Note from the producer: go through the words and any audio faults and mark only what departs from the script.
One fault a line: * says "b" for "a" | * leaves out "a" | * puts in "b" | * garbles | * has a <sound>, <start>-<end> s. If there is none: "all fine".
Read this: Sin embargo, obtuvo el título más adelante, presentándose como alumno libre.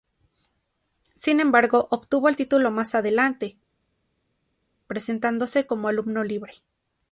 all fine